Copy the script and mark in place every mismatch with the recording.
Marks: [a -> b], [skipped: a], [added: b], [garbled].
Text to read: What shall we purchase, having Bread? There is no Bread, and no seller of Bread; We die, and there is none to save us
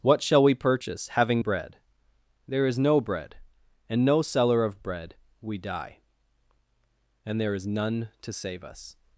What shall we purchase, having Bread? There is no Bread, and no seller of Bread; We die, and there is none to save us